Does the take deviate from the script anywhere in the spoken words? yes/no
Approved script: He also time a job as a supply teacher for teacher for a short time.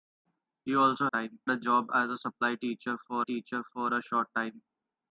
no